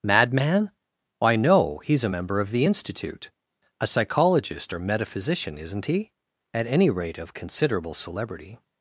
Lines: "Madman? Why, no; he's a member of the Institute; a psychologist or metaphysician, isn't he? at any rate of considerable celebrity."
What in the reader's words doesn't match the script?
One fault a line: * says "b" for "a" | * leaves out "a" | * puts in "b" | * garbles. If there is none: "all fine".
all fine